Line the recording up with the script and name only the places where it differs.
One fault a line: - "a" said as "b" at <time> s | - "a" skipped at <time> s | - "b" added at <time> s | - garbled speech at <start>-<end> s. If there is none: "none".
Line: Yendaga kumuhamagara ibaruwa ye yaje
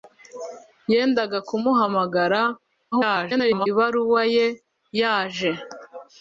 - garbled speech at 2.9-3.7 s